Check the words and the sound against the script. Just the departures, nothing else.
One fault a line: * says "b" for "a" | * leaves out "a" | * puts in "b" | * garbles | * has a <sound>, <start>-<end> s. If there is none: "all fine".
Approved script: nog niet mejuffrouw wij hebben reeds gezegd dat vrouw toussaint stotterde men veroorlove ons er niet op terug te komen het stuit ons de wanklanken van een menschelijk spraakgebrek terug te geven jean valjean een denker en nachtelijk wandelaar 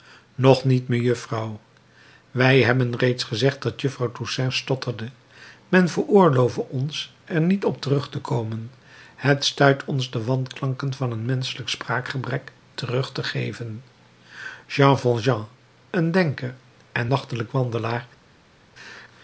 all fine